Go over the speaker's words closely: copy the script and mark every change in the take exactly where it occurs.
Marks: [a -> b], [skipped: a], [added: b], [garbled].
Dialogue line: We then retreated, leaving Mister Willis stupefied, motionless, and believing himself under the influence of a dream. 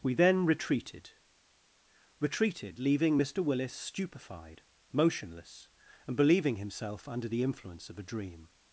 We then retreated, [added: retreated] leaving Mister Willis stupefied, motionless, and believing himself under the influence of a dream.